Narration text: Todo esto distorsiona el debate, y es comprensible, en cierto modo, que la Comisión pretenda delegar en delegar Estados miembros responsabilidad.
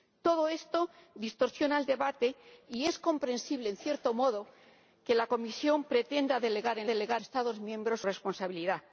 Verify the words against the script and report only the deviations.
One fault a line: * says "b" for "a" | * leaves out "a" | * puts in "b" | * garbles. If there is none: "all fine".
all fine